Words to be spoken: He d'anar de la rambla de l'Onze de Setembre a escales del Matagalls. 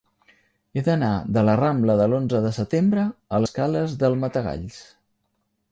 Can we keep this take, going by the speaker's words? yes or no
yes